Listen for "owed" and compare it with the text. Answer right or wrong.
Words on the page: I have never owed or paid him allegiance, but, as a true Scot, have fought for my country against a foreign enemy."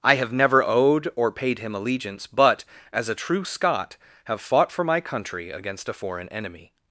right